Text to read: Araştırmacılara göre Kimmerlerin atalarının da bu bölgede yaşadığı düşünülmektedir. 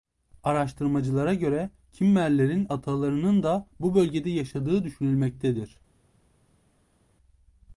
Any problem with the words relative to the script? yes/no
no